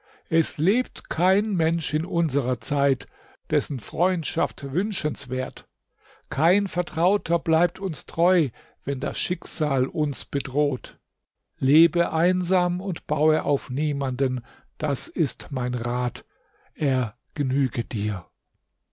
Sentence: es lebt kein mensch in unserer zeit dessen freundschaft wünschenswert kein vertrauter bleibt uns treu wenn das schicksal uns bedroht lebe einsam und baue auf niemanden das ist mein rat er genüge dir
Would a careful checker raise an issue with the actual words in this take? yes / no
no